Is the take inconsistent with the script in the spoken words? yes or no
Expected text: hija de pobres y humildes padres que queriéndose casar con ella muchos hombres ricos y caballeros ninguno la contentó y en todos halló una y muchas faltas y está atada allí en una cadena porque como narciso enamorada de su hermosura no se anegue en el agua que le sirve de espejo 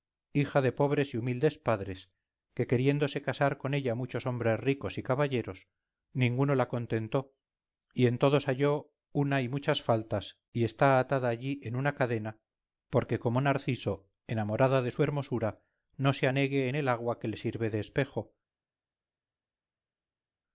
no